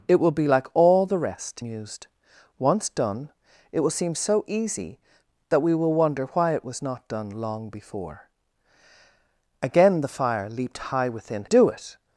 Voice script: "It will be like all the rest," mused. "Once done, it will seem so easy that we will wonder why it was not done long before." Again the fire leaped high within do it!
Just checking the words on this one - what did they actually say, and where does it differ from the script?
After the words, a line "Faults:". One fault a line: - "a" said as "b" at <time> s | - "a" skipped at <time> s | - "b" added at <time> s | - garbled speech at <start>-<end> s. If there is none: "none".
"It will be like all the rest," mused. "Once done, it will seem so easy that we will wonder why it was not done long before." Again the fire leaped high within do it!
Faults:
none